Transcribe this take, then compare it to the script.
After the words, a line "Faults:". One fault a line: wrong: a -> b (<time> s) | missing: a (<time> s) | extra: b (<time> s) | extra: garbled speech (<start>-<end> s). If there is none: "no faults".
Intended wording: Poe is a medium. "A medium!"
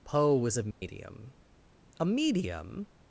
Poe was a medium. "A medium!"
Faults:
wrong: is -> was (0.3 s)